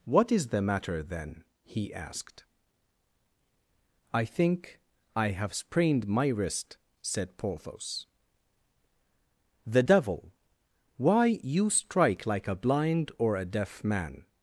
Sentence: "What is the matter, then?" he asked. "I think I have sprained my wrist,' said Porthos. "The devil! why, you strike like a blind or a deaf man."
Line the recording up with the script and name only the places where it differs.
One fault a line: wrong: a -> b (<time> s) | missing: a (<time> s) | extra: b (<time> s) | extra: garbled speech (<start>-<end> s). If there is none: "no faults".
no faults